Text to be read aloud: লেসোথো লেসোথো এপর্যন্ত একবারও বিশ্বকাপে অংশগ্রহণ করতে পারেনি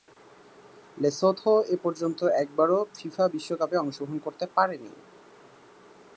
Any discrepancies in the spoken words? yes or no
yes